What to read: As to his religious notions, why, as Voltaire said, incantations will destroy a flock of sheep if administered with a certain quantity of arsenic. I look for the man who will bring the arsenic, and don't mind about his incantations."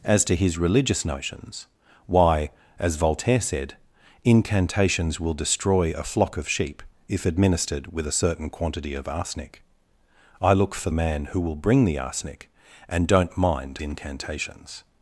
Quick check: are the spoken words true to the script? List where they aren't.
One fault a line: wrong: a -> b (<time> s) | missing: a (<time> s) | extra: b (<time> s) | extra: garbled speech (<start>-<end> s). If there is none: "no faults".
missing: the (10.9 s)
missing: about his (13.8 s)